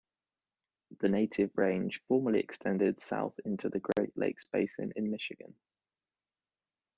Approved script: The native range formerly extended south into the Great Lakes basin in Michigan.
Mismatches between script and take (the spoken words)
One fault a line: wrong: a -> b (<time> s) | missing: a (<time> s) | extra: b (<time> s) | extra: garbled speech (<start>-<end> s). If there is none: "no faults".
no faults